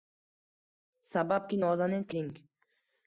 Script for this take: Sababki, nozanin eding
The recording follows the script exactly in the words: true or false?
true